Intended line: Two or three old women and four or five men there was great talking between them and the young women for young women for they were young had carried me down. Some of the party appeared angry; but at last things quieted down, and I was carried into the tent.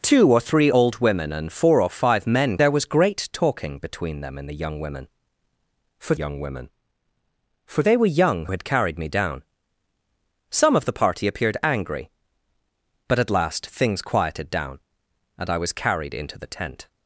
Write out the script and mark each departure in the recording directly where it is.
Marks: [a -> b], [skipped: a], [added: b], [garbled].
Two or three old women and four or five men there was great talking between them and the young women for young women for they were young had carried me down. Some of the party appeared angry; but at last things quieted down, and I was carried into the tent.